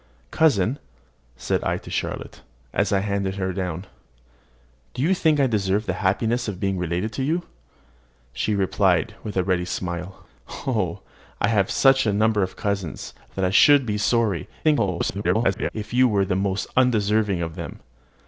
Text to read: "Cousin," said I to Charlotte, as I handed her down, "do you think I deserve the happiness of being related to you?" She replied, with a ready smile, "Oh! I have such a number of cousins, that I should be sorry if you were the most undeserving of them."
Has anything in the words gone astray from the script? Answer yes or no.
yes